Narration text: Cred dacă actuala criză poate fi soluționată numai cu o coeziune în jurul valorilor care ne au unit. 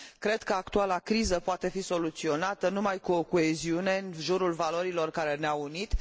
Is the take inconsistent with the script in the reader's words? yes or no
yes